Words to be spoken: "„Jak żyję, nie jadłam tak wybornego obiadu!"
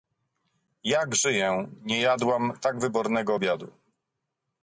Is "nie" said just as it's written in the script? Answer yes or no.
yes